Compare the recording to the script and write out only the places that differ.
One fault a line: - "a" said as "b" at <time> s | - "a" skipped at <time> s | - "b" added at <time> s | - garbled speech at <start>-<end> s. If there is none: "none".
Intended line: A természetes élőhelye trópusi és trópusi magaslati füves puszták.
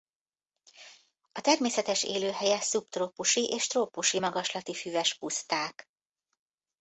- "trópusi" said as "szubtrópusi" at 2.6 s